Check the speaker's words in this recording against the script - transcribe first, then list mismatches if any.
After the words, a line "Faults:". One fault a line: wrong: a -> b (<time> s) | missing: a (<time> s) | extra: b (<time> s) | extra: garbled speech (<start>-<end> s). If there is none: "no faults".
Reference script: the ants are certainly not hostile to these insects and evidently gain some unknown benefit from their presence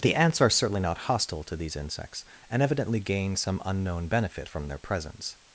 the ants are certainly not hostile to these insects and evidently gain some unknown benefit from their presence
Faults:
no faults